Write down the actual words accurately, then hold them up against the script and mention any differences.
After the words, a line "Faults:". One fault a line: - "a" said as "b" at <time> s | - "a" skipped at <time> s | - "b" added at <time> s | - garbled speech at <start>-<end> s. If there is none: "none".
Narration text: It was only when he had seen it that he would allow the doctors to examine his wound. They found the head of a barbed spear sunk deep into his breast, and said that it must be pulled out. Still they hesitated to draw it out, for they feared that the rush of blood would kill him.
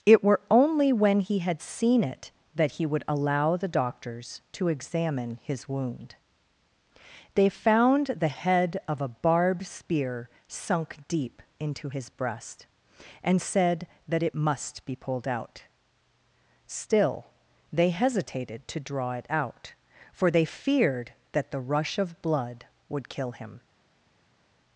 It were only when he had seen it that he would allow the doctors to examine his wound. They found the head of a barbed spear sunk deep into his breast, and said that it must be pulled out. Still they hesitated to draw it out, for they feared that the rush of blood would kill him.
Faults:
- "was" said as "were" at 0.2 s